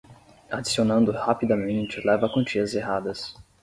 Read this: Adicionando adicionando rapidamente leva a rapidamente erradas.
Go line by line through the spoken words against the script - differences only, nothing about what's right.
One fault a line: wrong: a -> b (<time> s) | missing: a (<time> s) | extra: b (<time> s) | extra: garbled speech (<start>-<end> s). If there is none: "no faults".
missing: adicionando (1.1 s)
wrong: rapidamente -> quantias (2.3 s)